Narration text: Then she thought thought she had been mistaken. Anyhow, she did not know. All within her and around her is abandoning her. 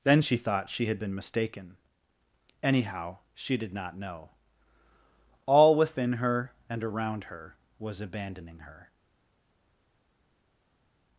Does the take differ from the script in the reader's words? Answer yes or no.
yes